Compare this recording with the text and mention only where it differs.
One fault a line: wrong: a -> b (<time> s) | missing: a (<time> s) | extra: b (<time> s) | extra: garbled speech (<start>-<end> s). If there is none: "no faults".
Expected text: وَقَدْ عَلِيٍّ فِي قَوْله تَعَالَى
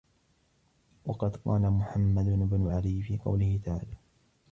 extra: قَالَ مُحَمَّدُ بْنُ (1.4 s)